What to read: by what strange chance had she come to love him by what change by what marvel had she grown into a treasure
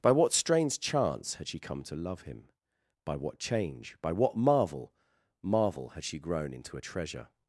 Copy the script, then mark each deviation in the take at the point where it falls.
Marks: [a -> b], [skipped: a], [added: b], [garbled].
by what strange chance had she come to love him by what change by what marvel [added: marvel] had she grown into a treasure